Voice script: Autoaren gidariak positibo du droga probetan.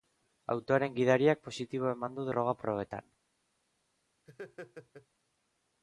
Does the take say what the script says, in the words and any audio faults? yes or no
no